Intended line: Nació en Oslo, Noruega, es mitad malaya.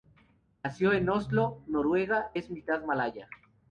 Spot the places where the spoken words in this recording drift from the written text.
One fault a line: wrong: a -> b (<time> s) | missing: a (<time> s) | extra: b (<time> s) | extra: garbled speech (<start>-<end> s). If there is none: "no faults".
no faults